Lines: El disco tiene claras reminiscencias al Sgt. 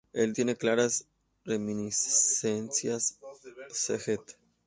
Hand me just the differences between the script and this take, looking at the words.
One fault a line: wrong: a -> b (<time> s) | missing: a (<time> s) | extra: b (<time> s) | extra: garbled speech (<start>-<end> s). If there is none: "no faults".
missing: disco (0.3 s)
missing: al (3.2 s)